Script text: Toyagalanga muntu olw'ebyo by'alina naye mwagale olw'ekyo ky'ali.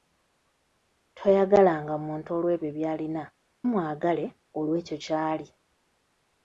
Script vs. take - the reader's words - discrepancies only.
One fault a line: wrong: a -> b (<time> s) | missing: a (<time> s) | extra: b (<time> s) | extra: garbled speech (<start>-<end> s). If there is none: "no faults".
missing: naye (3.2 s)